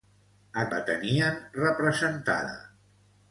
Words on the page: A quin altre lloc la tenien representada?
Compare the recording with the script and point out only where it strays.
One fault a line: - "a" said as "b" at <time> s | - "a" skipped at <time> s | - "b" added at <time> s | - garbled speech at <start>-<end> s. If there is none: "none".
- "quin altre lloc" skipped at 0.6 s